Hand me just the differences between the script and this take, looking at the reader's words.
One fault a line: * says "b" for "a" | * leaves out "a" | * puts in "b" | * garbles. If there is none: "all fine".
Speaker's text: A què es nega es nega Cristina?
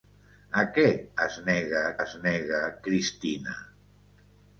all fine